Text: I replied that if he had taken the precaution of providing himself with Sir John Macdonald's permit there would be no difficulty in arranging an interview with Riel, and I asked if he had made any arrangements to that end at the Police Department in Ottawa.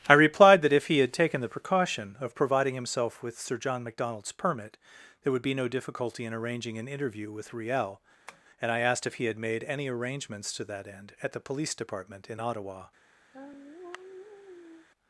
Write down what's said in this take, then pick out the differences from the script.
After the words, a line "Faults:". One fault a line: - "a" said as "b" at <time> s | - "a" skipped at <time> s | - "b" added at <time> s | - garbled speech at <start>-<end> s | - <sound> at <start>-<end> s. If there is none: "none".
I replied that if he had taken the precaution of providing himself with Sir John Macdonald's permit there would be no difficulty in arranging an interview with Riel, and I asked if he had made any arrangements to that end at the Police Department in Ottawa.
Faults:
- tap at 8.3-8.4 s
- sigh at 13.3-14.9 s